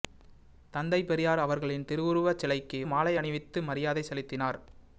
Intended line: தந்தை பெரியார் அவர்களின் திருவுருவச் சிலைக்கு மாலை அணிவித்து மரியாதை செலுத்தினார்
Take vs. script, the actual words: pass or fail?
pass